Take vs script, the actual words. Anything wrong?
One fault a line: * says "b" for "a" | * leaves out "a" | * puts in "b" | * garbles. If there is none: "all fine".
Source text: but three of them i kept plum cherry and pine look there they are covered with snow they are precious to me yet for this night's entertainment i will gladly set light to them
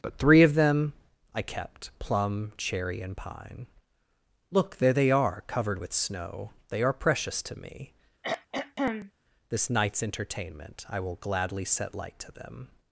* leaves out "yet for"